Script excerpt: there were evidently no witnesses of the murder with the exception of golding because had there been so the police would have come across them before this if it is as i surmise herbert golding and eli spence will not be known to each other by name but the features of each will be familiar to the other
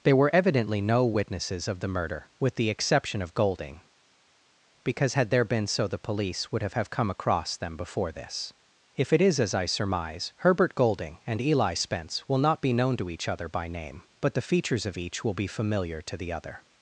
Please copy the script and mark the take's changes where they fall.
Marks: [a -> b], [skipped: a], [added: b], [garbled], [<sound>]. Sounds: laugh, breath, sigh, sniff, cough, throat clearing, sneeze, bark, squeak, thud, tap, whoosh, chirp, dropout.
there were evidently no witnesses of the murder with the exception of golding because had there been so the police would have [added: have] come across them before this if it is as i surmise herbert golding and eli spence will not be known to each other by name but the features of each will be familiar to the other